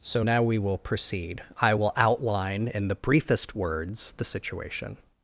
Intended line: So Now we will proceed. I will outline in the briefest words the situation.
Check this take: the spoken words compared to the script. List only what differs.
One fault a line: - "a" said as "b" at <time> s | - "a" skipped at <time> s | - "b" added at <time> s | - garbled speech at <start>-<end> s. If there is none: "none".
none